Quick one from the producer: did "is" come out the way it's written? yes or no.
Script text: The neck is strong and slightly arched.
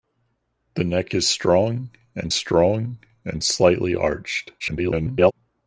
yes